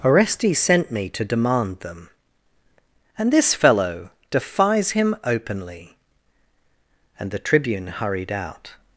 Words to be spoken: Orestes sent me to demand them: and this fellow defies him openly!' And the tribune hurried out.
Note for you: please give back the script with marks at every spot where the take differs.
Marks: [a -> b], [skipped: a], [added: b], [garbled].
Orestes sent me to demand them: and this fellow defies him openly!' And the tribune hurried out.